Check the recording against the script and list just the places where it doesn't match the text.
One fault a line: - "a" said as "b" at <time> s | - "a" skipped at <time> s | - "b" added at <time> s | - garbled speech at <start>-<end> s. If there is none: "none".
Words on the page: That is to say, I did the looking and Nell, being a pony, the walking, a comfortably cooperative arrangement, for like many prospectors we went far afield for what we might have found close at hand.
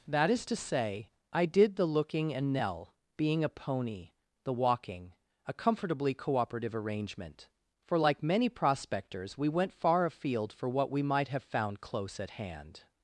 none